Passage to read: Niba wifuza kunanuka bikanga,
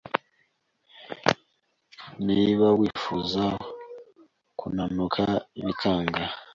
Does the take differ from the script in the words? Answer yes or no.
no